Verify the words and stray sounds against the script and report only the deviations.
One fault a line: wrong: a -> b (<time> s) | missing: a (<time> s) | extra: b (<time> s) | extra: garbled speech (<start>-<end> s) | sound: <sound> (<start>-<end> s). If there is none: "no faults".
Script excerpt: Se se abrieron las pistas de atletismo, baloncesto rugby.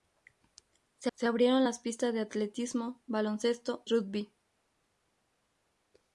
no faults